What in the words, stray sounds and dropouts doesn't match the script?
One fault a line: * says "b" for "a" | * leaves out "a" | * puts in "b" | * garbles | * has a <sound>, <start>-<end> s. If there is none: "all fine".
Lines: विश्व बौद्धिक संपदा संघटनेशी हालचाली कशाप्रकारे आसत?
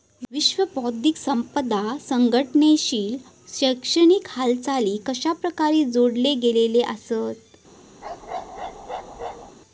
* puts in "शैक्षणिक"
* puts in "जोडले गेलेले"
* has a bark, 8.0-9.6 s